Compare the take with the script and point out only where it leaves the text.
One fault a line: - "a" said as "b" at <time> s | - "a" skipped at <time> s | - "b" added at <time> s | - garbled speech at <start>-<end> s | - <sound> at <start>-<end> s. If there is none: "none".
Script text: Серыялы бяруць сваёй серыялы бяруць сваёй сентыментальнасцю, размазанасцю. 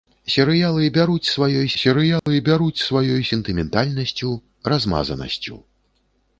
- dropout at 2.2-2.3 s